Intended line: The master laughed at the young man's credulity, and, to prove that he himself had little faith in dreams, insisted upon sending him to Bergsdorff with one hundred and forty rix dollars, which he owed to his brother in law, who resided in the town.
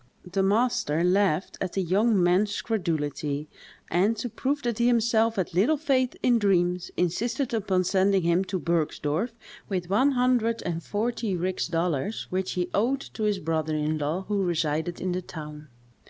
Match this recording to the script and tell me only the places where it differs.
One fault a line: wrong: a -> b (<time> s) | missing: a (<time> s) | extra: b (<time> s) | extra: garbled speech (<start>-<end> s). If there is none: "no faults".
no faults